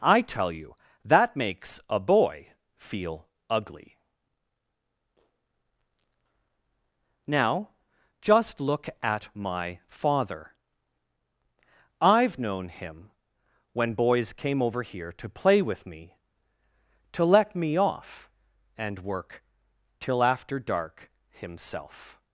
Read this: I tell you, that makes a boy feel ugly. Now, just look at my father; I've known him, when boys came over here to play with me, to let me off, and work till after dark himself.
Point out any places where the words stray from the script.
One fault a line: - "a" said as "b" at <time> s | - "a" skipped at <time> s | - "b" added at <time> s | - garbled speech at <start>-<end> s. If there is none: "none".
none